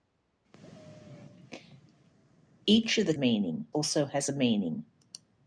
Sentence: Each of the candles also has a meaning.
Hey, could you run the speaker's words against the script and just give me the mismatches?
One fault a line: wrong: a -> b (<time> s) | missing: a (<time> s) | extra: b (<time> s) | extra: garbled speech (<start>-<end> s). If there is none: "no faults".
wrong: candles -> meaning (3.1 s)